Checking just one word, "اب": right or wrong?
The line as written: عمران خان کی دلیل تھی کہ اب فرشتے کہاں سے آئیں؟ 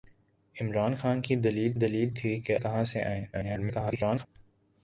wrong